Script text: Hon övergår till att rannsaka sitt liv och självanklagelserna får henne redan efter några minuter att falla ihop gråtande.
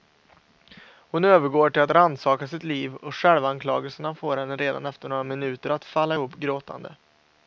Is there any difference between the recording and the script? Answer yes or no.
no